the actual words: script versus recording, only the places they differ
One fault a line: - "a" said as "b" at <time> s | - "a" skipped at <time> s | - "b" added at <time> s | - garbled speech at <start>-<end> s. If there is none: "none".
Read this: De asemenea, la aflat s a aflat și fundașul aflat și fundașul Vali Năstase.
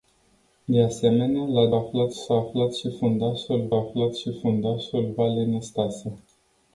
none